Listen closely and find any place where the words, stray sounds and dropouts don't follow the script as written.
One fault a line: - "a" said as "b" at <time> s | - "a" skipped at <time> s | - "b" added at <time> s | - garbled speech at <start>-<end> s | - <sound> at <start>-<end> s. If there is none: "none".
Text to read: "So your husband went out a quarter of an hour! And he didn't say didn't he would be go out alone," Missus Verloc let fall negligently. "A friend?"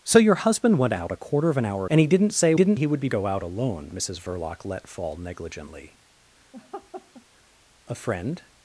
- laugh at 6.5-7.3 s